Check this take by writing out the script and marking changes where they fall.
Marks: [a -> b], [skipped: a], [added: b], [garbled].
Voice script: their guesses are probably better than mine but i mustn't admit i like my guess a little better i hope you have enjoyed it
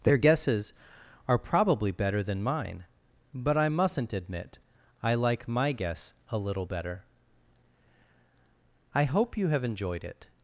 their guesses are probably better than mine but i mustn't admit i like my guess a little better i hope you have enjoyed it